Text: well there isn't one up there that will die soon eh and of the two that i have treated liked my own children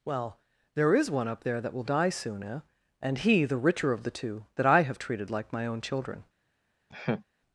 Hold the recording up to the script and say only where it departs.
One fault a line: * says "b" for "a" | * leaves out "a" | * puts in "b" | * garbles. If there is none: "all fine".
* says "is" for "isn't"
* puts in "he the richer"
* says "like" for "liked"